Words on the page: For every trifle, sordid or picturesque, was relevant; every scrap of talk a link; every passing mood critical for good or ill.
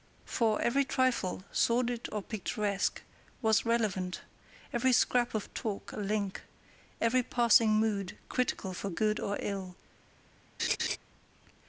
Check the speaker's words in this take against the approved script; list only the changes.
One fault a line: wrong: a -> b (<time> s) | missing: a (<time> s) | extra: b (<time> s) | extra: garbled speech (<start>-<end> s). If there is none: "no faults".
no faults